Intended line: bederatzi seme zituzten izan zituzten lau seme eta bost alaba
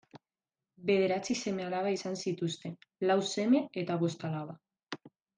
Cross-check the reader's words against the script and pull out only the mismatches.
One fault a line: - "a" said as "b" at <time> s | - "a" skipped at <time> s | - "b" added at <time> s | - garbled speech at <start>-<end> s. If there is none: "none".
- "zituzten" said as "alaba" at 1.7 s